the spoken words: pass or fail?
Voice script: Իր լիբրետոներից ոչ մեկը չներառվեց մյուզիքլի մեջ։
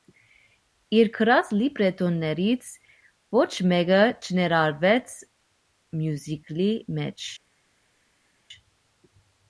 fail